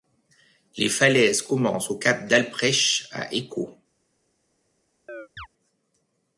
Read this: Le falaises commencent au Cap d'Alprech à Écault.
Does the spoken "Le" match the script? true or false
false